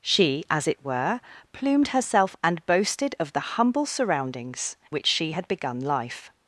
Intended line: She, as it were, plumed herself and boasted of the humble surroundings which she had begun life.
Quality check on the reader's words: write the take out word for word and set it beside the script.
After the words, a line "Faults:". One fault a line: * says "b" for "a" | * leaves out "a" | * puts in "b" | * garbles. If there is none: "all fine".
She, as it were, plumed herself and boasted of the humble surroundings which she had begun life.
Faults:
all fine